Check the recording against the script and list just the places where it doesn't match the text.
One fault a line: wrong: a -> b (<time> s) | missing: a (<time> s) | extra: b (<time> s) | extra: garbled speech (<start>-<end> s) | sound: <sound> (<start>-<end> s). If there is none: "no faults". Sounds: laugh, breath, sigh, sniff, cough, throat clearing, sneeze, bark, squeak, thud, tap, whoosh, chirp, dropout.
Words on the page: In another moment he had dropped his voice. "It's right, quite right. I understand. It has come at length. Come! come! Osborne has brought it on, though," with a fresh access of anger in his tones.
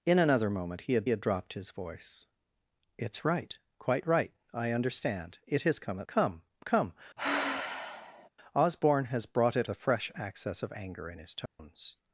extra: had (1.1 s)
missing: length (6.1 s)
sound: sigh (7.2-8.3 s)
missing: on though with (9.7 s)
sound: dropout (11.5-11.6 s)